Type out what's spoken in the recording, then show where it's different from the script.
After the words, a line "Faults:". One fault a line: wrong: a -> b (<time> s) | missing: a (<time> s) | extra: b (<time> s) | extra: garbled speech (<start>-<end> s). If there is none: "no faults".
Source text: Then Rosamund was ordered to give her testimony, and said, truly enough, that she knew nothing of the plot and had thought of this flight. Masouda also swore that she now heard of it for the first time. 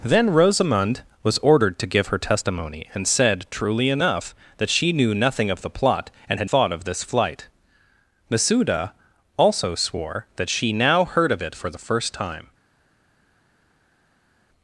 Then Rosamund was ordered to give her testimony, and said, truly enough, that she knew nothing of the plot and had thought of this flight. Masouda also swore that she now heard of it for the first time.
Faults:
no faults